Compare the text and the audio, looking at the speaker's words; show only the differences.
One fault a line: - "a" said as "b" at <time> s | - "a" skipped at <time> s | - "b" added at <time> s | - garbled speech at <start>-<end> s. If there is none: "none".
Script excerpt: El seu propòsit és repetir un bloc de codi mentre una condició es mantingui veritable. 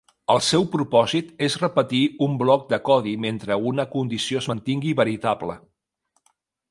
none